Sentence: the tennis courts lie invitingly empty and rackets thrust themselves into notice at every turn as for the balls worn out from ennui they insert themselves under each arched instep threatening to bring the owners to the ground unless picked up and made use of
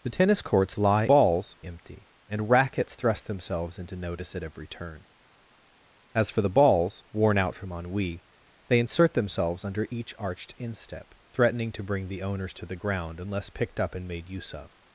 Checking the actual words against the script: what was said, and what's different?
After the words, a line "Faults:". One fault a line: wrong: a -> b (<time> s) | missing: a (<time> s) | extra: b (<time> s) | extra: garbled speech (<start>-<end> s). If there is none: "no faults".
the tennis courts lie balls empty and rackets thrust themselves into notice at every turn as for the balls worn out from ennui they insert themselves under each arched instep threatening to bring the owners to the ground unless picked up and made use of
Faults:
wrong: invitingly -> balls (1.1 s)